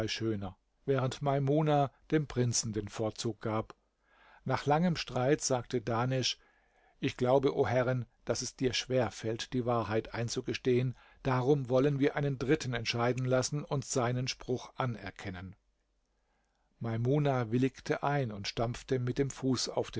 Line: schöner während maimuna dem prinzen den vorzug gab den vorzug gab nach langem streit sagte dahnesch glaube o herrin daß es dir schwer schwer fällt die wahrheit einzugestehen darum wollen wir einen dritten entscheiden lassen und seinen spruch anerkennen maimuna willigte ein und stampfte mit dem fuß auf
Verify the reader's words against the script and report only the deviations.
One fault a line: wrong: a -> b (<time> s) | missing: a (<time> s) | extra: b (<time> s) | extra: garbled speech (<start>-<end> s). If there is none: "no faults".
missing: den vorzug gab (3.8 s)
extra: ich (7.0 s)
missing: schwer (9.1 s)